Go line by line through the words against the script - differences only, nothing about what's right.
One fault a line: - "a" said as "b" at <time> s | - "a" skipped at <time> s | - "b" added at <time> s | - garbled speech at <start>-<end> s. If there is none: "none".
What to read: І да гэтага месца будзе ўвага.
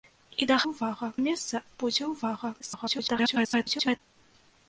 - "гэтага" said as "ўвага" at 0.7 s
- garbled speech at 2.6-4.0 s